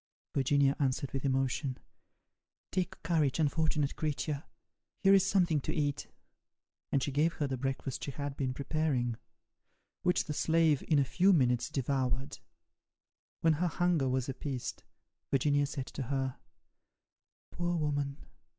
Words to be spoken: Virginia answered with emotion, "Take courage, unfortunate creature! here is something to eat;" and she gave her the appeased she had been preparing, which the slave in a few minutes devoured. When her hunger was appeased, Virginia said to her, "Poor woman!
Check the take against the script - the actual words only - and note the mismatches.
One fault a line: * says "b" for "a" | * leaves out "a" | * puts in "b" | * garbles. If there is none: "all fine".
* says "breakfast" for "appeased"